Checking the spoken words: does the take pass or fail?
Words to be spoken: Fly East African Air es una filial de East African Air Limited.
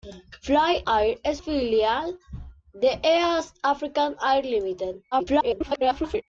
fail